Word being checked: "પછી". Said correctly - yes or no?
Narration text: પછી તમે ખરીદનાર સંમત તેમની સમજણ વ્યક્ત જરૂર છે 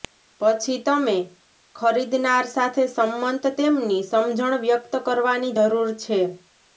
yes